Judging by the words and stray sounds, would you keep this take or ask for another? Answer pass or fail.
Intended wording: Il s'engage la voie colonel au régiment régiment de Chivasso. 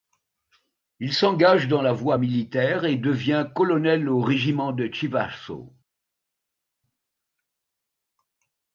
fail